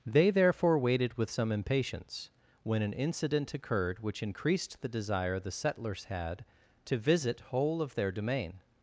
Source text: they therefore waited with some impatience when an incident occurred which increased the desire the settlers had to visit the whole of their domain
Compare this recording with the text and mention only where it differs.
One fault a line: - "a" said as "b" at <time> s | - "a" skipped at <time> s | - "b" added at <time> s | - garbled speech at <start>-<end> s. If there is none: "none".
- "the" skipped at 7.4 s